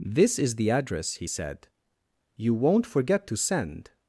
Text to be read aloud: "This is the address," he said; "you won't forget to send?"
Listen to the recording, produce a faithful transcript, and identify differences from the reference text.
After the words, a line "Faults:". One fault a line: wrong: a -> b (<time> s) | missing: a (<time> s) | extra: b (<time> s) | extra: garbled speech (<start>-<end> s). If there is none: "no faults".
"This is the address," he said; "you won't forget to send?"
Faults:
no faults